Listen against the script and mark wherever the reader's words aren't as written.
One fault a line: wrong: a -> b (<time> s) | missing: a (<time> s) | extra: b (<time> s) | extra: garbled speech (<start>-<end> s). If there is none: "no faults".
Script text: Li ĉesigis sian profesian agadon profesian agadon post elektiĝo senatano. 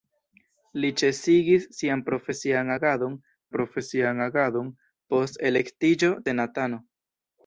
no faults